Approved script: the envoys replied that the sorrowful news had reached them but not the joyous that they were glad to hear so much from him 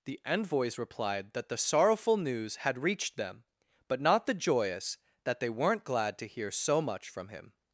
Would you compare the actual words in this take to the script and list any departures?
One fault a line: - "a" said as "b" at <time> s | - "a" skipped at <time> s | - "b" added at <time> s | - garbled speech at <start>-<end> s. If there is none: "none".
- "were" said as "weren't" at 5.5 s